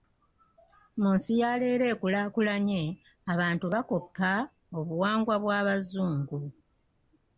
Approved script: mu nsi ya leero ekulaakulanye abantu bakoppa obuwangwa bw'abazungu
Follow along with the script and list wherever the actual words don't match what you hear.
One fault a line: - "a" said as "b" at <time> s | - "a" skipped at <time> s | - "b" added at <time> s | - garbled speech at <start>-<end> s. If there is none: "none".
none